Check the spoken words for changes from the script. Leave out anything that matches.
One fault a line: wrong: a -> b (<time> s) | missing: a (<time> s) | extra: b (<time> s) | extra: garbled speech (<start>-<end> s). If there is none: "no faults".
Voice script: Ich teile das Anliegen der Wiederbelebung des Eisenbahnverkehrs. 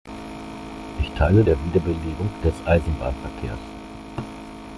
missing: das Anliegen (1.4 s)